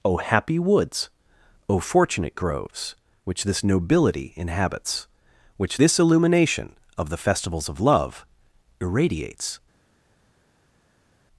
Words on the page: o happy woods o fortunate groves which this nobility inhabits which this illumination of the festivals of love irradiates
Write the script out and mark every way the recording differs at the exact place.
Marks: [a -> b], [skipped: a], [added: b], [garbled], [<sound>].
o happy woods o fortunate groves which this nobility inhabits which this illumination of the festivals of love irradiates